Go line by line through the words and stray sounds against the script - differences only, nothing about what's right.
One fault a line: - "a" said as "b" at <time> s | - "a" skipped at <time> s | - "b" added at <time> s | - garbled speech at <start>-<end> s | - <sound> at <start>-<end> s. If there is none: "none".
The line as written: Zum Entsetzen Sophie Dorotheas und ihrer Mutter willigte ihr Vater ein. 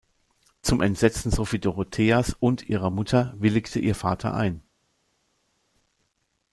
none